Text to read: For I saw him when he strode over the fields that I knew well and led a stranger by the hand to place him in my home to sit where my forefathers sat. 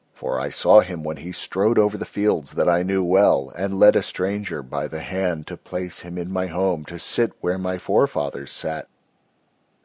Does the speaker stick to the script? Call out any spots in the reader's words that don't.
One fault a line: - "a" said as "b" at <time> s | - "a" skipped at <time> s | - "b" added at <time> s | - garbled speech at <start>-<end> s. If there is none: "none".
none